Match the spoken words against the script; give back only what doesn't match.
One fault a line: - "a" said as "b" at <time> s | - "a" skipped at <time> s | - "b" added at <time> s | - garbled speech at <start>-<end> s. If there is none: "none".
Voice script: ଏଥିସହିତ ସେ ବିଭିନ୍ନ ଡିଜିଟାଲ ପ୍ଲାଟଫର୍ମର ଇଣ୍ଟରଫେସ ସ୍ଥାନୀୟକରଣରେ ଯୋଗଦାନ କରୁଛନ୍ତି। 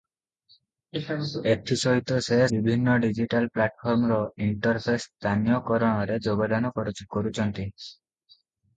none